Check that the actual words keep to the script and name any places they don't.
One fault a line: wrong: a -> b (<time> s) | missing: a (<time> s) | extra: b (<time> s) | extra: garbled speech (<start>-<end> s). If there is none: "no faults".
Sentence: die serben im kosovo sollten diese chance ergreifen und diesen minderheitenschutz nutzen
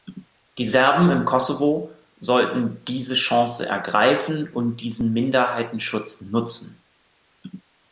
no faults